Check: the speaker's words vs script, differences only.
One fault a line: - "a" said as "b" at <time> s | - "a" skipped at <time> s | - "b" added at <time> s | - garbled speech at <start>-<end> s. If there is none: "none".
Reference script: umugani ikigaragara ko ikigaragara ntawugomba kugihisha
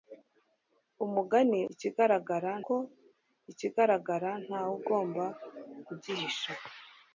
none